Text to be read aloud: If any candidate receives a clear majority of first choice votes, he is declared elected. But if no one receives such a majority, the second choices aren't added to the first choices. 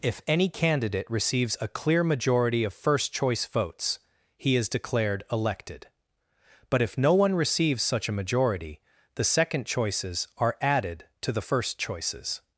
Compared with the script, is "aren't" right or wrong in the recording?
wrong